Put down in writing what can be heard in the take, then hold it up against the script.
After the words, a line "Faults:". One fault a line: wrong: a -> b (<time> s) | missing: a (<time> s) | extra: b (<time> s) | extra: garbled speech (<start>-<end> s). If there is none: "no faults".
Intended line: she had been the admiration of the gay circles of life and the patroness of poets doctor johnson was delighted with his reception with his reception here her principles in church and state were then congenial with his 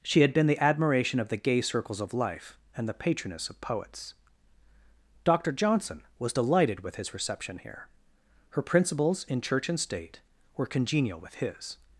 she had been the admiration of the gay circles of life and the patroness of poets doctor johnson was delighted with his reception here her principles in church and state were congenial with his
Faults:
missing: with his reception (7.6 s)
missing: then (10.7 s)